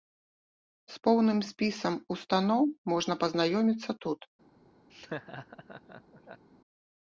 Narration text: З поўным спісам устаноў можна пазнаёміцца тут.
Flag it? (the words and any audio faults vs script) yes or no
yes